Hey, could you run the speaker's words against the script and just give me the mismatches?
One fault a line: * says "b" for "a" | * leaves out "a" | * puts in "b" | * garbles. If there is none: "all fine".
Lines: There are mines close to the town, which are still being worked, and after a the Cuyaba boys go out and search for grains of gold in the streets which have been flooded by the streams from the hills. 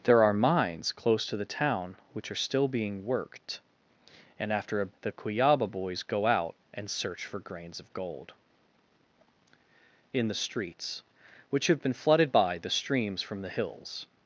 all fine